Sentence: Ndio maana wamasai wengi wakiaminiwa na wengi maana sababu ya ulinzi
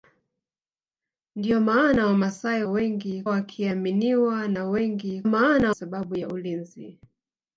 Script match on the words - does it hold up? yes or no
yes